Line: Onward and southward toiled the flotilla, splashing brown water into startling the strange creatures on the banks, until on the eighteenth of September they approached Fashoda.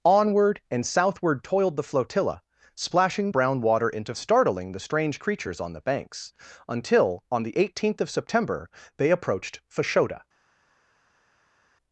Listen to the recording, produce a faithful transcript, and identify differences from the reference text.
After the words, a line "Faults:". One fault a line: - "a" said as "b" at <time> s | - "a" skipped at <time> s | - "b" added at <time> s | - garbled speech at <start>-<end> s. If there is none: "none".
Onward and southward toiled the flotilla, splashing brown water into startling the strange creatures on the banks, until on the eighteenth of September they approached Fashoda.
Faults:
none